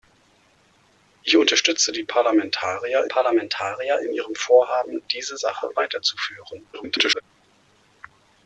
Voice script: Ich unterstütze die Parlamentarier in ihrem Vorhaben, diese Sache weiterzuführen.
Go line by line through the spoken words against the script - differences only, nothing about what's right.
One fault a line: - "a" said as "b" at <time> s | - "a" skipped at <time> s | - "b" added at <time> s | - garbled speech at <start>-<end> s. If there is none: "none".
- "Parlamentarier" added at 3.0 s
- garbled speech at 6.7-7.2 s